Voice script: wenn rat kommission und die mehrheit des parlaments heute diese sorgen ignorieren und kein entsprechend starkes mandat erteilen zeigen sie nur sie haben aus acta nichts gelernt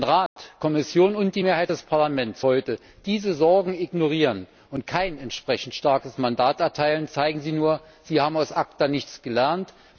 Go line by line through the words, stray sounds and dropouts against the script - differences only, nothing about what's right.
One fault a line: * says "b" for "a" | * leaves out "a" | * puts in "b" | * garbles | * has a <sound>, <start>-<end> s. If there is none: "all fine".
* has a dropout, 0.3-0.4 s